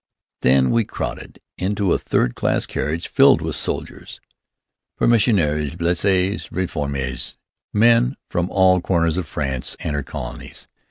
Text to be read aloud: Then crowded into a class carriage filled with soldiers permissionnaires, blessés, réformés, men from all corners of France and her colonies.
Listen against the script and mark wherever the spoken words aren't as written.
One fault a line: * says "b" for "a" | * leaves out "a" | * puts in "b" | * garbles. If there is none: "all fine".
* puts in "we"
* puts in "third"